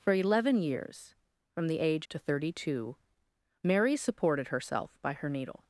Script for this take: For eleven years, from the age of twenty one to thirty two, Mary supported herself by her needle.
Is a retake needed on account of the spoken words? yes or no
yes